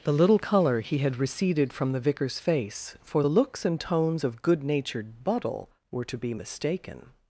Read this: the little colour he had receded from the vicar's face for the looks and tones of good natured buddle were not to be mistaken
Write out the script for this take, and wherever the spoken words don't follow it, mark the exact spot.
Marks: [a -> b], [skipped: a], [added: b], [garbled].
the little colour he had receded from the vicar's face for the looks and tones of good natured buddle were [skipped: not] to be mistaken